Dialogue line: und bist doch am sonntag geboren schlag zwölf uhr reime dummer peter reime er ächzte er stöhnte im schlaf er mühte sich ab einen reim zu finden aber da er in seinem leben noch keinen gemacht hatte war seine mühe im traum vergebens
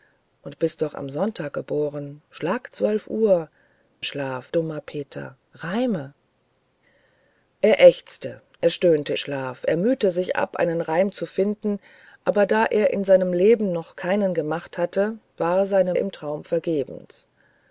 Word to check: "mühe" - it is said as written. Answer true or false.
false